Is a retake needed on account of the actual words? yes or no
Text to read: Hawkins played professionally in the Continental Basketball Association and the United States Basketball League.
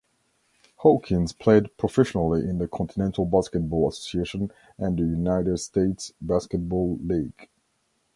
no